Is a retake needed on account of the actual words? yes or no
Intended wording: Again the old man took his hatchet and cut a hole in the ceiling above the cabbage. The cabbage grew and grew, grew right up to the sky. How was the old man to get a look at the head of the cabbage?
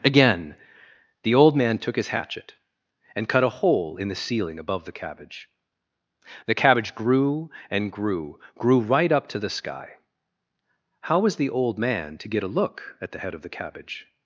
no